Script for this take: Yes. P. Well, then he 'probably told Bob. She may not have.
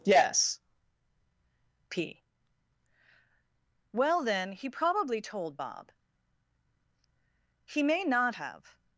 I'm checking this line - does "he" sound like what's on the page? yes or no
yes